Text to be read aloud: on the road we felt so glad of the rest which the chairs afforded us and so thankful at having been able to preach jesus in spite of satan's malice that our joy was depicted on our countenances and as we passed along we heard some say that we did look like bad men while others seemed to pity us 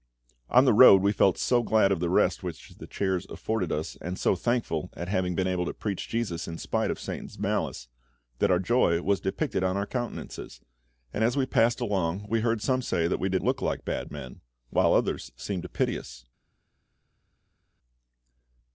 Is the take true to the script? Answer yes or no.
yes